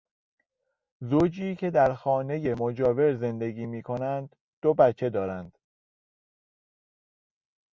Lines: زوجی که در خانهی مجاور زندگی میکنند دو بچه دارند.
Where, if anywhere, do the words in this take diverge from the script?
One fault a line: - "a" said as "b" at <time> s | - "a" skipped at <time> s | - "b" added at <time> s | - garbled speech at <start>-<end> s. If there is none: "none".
none